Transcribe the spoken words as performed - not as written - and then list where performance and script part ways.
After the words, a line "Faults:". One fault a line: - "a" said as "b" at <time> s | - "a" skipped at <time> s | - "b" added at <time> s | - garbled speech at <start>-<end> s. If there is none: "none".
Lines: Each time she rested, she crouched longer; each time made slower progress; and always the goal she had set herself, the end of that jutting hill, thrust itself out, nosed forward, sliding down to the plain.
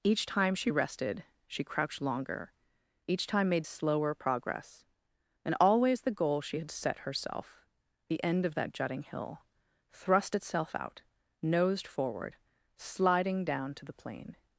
Each time she rested, she crouched longer; each time made slower progress; and always the goal she had set herself, the end of that jutting hill, thrust itself out, nosed forward, sliding down to the plain.
Faults:
none